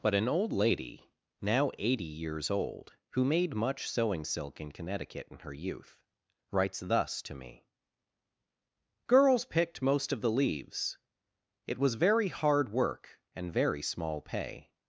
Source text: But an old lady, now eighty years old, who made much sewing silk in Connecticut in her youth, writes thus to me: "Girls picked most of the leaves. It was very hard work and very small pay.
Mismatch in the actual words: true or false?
false